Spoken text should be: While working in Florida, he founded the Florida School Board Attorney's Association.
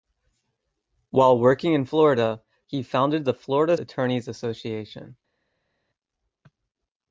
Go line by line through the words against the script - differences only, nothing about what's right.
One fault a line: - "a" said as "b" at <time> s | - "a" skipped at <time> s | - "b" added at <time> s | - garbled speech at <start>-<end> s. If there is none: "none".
- "School Board" skipped at 3.8 s